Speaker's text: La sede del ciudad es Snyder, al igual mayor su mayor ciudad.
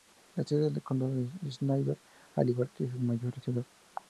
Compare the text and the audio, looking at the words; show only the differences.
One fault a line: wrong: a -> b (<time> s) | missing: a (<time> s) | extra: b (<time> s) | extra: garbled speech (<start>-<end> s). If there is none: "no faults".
wrong: ciudad -> condado (0.8 s)
wrong: mayor -> que (2.7 s)